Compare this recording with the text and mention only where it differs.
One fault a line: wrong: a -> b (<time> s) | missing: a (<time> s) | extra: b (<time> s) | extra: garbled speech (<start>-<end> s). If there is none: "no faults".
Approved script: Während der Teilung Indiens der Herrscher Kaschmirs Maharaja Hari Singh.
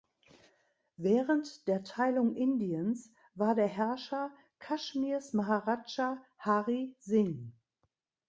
extra: war (3.3 s)